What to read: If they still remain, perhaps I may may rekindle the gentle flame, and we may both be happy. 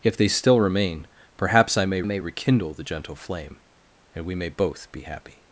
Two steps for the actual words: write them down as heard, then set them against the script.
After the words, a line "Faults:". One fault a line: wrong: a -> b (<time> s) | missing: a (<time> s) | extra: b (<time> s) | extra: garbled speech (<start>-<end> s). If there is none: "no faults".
If they still remain, perhaps I may may rekindle the gentle flame, and we may both be happy.
Faults:
no faults